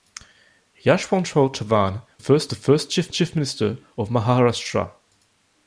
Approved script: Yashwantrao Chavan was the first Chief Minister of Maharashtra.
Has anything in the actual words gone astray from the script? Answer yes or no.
yes